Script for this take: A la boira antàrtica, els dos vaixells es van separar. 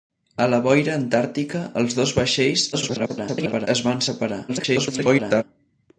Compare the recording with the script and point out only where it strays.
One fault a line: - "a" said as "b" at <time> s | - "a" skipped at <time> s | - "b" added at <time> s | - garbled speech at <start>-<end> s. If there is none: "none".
- garbled speech at 2.7-3.7 s
- garbled speech at 4.5-5.4 s